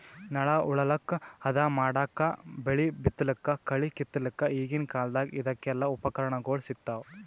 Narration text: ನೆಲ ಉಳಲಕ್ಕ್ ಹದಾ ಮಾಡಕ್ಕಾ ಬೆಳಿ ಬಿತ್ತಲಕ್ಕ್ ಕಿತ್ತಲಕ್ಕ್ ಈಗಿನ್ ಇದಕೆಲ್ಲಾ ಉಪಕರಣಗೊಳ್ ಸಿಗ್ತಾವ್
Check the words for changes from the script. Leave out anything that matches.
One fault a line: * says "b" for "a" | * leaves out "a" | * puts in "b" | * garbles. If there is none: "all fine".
* puts in "ಕಳಿ"
* puts in "ಕಾಲ್ದಗ್"